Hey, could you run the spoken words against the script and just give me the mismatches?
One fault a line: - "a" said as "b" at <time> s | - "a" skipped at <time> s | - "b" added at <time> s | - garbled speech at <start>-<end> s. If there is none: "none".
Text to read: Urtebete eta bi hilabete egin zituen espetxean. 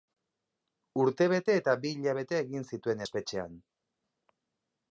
none